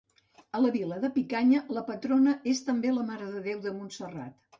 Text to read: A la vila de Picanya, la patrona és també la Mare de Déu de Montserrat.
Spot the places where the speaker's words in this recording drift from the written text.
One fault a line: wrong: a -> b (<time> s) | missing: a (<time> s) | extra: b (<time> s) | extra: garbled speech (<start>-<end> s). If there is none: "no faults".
no faults